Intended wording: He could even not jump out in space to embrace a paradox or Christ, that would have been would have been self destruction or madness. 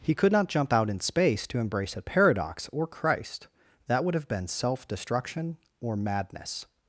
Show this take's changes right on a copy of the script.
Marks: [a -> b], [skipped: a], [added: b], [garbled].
He could [skipped: even] not jump out in space to embrace a paradox or Christ, that would have been [skipped: would have been] self destruction or madness.